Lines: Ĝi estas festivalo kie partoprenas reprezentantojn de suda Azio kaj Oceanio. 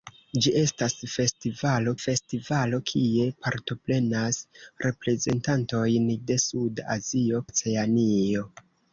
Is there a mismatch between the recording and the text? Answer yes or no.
yes